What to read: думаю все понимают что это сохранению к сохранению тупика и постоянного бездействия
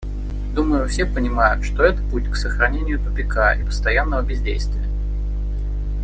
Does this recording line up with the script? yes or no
no